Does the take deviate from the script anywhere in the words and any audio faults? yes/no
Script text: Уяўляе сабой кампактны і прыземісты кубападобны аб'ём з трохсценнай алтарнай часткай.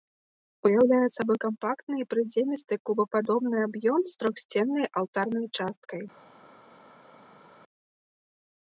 no